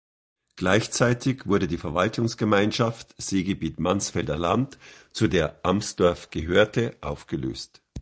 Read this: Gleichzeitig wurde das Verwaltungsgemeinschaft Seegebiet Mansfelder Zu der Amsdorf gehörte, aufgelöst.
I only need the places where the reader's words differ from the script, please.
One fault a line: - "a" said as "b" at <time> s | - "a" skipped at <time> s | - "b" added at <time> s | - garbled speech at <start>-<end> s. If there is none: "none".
- "das" said as "die" at 1.7 s
- "Land" added at 4.4 s